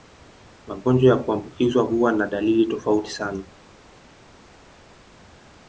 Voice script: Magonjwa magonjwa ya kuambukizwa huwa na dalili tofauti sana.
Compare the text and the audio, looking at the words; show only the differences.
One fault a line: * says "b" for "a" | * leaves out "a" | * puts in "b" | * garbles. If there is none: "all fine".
* leaves out "magonjwa"